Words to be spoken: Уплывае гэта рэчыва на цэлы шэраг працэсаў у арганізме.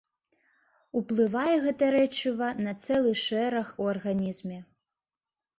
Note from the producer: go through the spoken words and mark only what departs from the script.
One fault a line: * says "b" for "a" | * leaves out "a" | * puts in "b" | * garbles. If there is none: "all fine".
* leaves out "працэсаў"